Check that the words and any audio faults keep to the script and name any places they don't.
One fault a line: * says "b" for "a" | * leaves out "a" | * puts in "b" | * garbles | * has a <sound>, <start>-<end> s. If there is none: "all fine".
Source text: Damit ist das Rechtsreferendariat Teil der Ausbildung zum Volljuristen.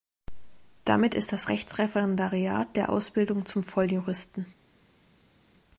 * leaves out "Teil"